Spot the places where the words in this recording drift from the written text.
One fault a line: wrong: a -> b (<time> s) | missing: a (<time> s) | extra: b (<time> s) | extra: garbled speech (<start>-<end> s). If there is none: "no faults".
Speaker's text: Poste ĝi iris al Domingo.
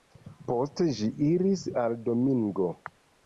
no faults